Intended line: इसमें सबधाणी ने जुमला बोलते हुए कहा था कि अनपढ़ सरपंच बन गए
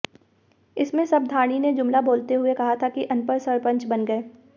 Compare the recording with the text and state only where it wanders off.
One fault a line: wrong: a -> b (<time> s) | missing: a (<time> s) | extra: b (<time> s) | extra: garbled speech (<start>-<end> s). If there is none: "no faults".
no faults